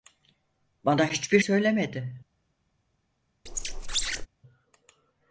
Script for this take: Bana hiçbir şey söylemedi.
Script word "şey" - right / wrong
wrong